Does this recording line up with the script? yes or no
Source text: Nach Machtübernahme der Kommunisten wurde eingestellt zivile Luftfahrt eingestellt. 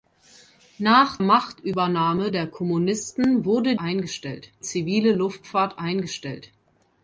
yes